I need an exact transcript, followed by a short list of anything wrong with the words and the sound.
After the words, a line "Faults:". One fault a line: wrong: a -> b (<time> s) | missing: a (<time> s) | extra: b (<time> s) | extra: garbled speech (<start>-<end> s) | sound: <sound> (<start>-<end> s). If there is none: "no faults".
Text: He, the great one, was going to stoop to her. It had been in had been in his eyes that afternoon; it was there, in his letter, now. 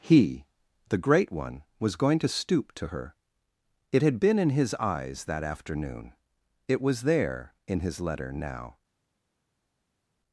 He, the great one, was going to stoop to her. It had been in his eyes that afternoon; it was there, in his letter, now.
Faults:
missing: had been in (4.5 s)